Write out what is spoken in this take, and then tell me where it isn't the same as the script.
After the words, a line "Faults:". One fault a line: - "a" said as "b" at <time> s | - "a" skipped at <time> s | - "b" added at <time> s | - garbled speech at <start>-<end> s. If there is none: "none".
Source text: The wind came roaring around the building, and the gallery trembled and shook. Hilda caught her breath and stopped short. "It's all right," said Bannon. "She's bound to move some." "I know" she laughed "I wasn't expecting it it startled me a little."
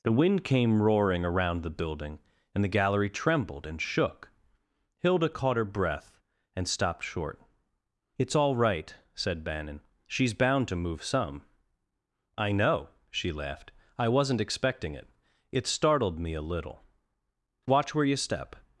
The wind came roaring around the building, and the gallery trembled and shook. Hilda caught her breath and stopped short. "It's all right," said Bannon. "She's bound to move some." "I know" she laughed "I wasn't expecting it it startled me a little." "Watch where you step
Faults:
- "Watch where you step" added at 17.6 s